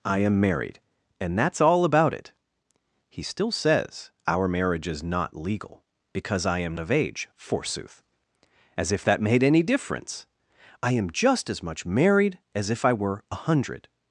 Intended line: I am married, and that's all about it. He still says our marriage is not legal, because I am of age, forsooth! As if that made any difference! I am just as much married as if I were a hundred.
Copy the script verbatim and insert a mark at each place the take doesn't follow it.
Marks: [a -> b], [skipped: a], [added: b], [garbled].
I am married, and that's all about it. He still says our marriage is not legal, because I am of age, forsooth! As if that made any difference! I am just as much married as if I were a hundred.